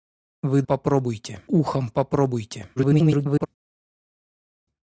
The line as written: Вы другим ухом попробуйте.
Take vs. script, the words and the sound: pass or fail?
fail